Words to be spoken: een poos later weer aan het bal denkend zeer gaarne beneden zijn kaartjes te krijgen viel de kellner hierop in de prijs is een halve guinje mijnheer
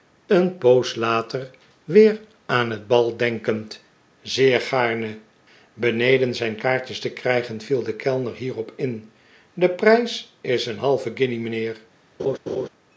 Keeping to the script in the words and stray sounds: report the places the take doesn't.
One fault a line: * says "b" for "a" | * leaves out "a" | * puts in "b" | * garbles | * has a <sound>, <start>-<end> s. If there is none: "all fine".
* has a laugh, 12.2-12.7 s